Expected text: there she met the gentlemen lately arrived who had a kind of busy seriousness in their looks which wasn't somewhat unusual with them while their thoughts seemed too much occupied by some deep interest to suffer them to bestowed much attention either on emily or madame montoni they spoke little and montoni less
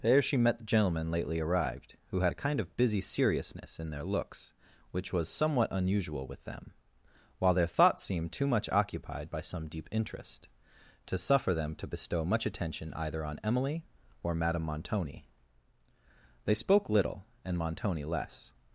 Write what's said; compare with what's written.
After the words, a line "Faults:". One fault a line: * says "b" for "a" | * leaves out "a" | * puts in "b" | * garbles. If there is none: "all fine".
there she met the gentlemen lately arrived who had a kind of busy seriousness in their looks which was somewhat unusual with them while their thoughts seemed too much occupied by some deep interest to suffer them to bestow much attention either on emily or madame montoni they spoke little and montoni less
Faults:
* says "was" for "wasn't"
* says "bestow" for "bestowed"